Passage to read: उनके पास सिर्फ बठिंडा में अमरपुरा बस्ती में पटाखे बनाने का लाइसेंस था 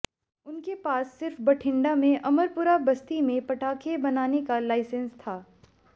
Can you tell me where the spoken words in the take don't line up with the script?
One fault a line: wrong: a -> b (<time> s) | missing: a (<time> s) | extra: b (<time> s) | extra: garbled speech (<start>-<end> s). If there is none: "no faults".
no faults